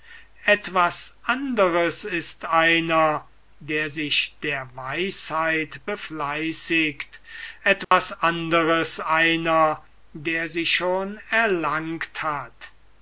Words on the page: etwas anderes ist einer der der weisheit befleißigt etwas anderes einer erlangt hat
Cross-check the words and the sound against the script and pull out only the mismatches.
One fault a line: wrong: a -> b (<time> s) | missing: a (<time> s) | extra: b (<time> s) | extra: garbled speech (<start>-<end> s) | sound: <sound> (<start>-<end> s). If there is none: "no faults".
extra: sich (3.9 s)
sound: dropout (7.8-7.9 s)
extra: der sie schon (10.1 s)